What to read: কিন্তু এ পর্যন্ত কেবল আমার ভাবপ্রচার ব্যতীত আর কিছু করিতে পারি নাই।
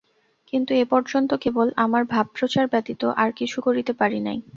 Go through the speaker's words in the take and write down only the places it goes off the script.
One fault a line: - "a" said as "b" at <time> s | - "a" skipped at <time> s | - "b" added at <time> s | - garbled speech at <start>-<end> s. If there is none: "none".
none